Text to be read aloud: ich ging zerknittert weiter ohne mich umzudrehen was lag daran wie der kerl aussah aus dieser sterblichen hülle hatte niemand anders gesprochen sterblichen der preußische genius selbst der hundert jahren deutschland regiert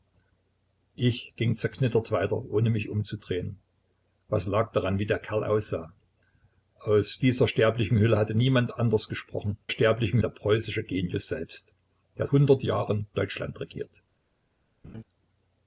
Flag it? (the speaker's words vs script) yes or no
no